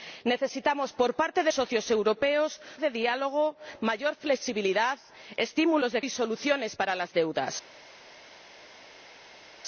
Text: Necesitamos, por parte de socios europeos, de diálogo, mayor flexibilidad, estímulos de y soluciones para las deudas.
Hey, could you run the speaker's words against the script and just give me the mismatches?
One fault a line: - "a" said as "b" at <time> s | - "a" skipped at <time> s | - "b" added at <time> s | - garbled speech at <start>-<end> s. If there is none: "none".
none